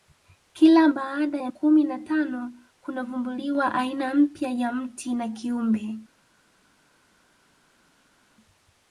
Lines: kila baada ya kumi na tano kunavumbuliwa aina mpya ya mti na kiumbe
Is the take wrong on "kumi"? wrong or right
right